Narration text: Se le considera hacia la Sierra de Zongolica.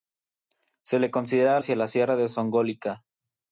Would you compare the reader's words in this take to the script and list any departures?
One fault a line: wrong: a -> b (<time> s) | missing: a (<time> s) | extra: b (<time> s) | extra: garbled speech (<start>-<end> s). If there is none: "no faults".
no faults